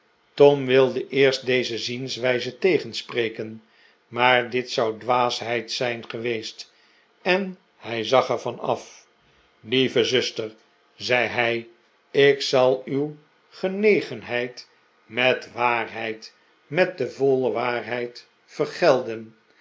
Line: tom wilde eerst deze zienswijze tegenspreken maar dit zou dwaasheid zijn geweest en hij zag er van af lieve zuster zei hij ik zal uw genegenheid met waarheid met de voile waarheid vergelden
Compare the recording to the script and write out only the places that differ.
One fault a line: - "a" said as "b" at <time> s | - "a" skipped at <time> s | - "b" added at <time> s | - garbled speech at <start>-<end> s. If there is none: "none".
none